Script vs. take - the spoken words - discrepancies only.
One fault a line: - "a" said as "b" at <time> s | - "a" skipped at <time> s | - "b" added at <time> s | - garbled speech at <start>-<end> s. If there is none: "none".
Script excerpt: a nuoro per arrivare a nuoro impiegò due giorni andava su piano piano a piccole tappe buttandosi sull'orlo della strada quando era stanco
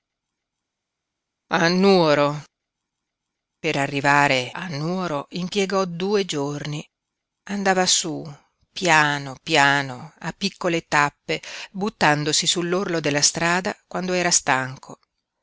none